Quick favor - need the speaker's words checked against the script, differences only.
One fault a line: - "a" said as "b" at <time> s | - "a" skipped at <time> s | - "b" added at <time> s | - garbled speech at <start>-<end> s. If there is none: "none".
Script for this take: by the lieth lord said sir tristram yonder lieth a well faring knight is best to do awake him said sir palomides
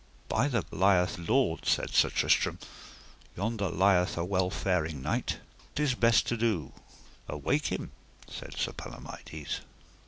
none